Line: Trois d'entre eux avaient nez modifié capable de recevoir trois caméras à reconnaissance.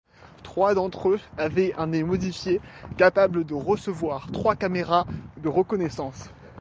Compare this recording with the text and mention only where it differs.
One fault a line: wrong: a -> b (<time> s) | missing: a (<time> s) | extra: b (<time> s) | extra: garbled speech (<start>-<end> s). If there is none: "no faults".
extra: un (1.8 s)
wrong: à -> de (5.4 s)